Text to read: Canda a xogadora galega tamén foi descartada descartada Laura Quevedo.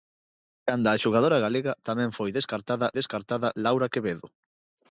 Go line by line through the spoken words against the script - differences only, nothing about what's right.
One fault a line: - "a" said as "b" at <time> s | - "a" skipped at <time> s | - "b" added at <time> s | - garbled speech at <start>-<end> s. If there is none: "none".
none